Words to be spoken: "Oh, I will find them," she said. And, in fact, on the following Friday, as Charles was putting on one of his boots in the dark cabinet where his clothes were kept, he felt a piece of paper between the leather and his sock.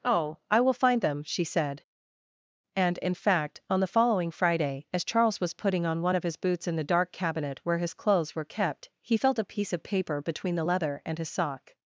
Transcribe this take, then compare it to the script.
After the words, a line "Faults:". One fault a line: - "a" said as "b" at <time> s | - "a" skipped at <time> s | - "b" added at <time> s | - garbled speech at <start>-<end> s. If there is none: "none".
"Oh, I will find them," she said. And, in fact, on the following Friday, as Charles was putting on one of his boots in the dark cabinet where his clothes were kept, he felt a piece of paper between the leather and his sock.
Faults:
none